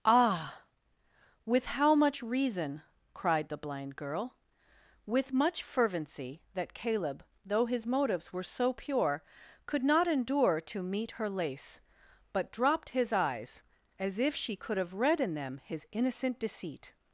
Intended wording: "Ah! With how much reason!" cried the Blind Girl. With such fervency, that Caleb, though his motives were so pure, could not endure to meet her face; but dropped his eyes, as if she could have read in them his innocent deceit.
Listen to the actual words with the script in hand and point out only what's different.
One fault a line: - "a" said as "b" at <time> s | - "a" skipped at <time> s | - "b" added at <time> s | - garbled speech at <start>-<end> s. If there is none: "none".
- "such" said as "much" at 5.3 s
- "face" said as "lace" at 11.3 s